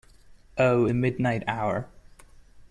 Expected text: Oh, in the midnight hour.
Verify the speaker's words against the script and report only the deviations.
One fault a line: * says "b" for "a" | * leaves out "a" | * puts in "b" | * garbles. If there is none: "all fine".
* leaves out "in"